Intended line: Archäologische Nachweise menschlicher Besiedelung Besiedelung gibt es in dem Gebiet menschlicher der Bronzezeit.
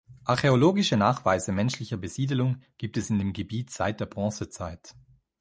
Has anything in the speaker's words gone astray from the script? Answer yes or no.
yes